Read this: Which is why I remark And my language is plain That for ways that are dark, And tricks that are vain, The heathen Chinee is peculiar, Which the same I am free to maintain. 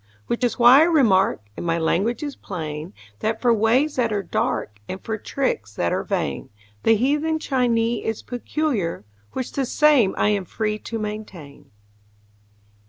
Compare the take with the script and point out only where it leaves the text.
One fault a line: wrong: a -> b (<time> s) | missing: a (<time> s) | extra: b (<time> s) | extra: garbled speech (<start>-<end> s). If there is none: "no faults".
extra: for (5.0 s)